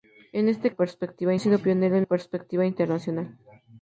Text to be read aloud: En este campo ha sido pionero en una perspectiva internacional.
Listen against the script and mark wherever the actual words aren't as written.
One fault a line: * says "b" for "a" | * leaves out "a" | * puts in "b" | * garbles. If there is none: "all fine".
* says "perspectiva" for "campo"
* leaves out "una"